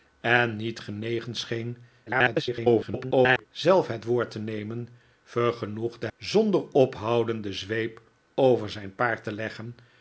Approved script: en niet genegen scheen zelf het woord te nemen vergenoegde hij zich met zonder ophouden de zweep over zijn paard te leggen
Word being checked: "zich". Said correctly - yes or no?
no